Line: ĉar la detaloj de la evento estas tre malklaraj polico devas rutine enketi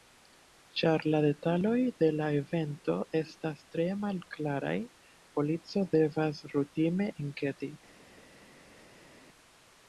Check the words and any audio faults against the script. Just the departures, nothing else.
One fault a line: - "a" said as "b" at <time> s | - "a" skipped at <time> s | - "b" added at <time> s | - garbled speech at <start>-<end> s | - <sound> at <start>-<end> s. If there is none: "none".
none